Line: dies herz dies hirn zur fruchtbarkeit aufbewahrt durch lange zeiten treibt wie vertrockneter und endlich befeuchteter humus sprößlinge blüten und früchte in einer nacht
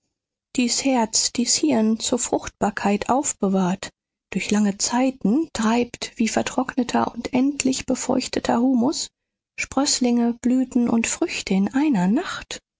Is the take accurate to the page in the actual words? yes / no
yes